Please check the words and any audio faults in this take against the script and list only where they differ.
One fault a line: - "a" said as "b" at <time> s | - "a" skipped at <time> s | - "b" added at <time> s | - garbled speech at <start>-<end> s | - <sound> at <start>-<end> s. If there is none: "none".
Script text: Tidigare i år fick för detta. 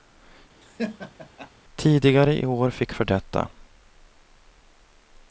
- laugh at 0.6-1.5 s